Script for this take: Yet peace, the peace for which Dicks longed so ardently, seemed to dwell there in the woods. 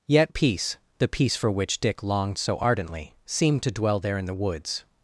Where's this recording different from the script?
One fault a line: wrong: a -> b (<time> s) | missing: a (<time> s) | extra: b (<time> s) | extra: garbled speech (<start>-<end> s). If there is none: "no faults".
wrong: Dicks -> Dick (1.8 s)